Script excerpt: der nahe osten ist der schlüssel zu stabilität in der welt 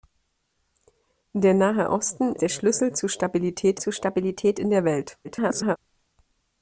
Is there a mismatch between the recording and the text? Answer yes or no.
yes